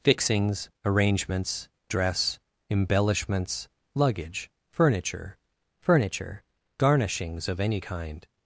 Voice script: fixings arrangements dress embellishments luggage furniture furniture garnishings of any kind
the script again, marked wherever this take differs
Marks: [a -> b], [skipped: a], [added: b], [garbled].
fixings arrangements dress embellishments luggage furniture furniture garnishings of any kind